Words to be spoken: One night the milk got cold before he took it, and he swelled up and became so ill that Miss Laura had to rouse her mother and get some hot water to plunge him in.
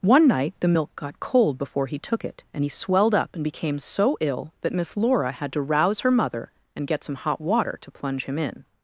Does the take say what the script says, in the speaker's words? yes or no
yes